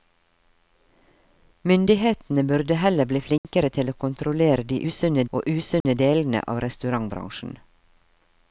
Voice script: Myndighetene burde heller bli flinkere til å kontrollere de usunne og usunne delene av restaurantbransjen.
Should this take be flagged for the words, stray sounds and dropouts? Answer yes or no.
yes